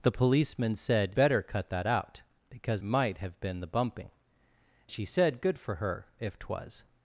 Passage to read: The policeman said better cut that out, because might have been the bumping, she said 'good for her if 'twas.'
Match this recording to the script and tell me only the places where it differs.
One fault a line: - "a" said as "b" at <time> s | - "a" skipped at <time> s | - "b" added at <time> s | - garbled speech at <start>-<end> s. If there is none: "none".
none